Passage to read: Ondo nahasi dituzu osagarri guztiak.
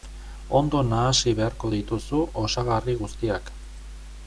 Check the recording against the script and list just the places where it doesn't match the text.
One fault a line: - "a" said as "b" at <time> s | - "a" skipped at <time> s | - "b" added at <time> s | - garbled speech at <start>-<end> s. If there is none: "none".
- "beharko" added at 1.4 s